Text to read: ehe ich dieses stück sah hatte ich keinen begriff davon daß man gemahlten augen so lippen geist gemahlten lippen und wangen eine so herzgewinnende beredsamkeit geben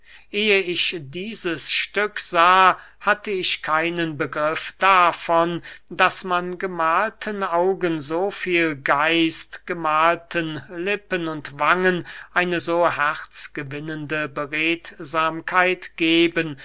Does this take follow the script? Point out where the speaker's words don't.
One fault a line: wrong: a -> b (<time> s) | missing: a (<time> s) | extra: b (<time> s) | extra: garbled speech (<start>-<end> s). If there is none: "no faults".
wrong: lippen -> viel (8.3 s)